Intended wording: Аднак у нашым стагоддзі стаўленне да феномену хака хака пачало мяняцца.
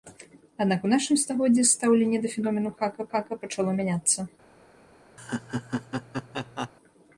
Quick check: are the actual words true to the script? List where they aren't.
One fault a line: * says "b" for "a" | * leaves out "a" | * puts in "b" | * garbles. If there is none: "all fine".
all fine